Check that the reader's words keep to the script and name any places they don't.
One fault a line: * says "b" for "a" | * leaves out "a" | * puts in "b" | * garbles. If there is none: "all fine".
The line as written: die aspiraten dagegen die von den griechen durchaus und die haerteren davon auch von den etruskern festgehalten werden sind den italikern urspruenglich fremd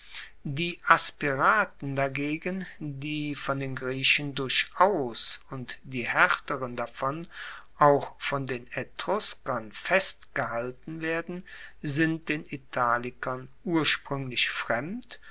all fine